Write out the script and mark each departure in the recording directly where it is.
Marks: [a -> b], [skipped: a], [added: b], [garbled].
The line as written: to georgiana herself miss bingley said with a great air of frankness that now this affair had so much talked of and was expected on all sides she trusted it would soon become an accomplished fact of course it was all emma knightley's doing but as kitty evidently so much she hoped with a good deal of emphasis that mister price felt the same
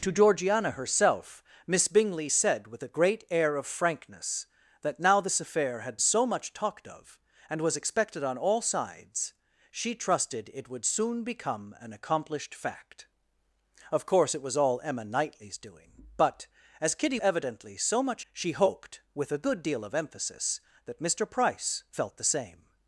to georgiana herself miss bingley said with a great air of frankness that now this affair had so much talked of and was expected on all sides she trusted it would soon become an accomplished fact of course it was all emma knightley's doing but as kitty evidently so much she hoped with a good deal of emphasis that mister price felt the same